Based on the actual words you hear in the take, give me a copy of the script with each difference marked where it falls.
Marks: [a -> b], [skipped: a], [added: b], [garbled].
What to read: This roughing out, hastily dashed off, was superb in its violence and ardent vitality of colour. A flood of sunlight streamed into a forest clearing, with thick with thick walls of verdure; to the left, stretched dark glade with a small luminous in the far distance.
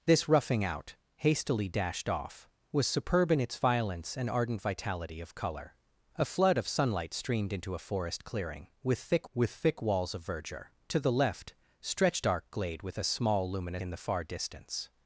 This roughing out, hastily dashed off, was superb in its violence and ardent vitality of colour. A flood of sunlight streamed into a forest clearing, with thick with thick walls of verdure; to the left, stretched dark glade with a small luminous in the far distance.